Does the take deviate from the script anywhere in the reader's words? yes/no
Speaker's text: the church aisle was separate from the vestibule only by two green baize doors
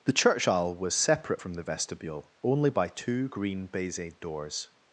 no